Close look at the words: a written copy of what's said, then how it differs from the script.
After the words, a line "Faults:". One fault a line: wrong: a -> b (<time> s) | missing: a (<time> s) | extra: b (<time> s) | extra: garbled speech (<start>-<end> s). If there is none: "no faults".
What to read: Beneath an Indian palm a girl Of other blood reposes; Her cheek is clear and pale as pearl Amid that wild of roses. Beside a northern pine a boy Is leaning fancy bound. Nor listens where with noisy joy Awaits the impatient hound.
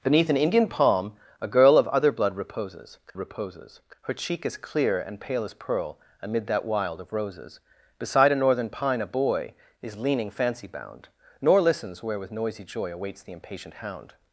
Beneath an Indian palm a girl Of other blood reposes reposes; Her cheek is clear and pale as pearl Amid that wild of roses. Beside a northern pine a boy Is leaning fancy bound. Nor listens where with noisy joy Awaits the impatient hound.
Faults:
extra: reposes (3.2 s)